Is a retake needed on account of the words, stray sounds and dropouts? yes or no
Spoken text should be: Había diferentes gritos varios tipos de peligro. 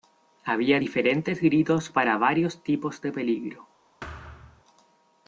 yes